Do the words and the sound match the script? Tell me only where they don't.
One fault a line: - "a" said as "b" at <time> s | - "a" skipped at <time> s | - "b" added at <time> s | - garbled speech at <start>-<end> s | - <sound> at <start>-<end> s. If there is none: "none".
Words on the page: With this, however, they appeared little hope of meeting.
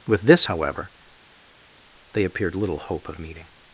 none